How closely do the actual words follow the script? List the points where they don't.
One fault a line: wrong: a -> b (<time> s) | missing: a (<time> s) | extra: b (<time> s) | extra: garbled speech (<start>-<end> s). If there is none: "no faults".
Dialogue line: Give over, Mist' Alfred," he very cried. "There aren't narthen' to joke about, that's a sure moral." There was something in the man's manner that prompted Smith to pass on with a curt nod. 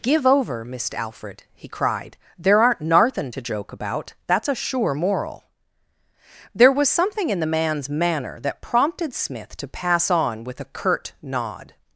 missing: very (1.7 s)